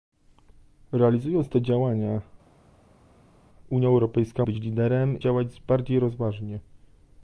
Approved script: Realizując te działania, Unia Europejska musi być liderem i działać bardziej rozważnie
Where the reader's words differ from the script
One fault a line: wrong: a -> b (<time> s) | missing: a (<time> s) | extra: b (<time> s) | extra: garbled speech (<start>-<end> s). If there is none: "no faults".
missing: musi (4.4 s)
missing: i (5.2 s)